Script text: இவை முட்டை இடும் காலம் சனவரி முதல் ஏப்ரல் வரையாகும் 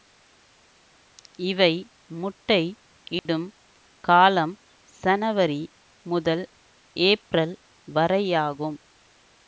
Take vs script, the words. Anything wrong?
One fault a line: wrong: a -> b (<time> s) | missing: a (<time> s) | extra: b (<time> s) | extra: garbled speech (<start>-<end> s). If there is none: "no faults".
no faults